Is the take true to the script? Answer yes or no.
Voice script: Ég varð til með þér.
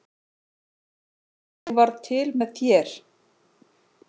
yes